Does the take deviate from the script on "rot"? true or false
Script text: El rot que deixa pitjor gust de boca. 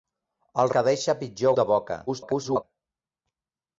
true